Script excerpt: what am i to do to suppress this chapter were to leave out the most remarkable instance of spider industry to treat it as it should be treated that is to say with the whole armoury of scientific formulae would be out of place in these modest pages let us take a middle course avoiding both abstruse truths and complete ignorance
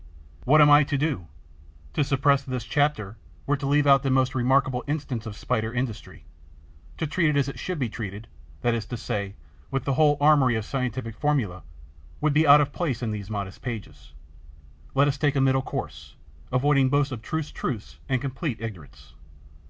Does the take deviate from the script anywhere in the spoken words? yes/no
no